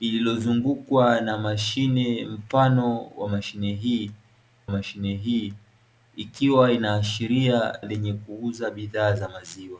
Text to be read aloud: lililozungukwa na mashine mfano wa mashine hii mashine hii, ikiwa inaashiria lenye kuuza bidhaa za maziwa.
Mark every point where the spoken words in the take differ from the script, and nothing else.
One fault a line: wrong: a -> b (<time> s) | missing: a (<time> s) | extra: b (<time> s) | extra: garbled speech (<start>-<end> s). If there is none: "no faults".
no faults